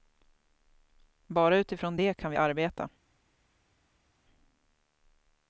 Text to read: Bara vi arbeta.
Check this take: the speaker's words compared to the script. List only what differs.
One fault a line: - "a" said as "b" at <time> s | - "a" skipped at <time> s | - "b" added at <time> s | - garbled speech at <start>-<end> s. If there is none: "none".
- "utifrån det kan" added at 1.6 s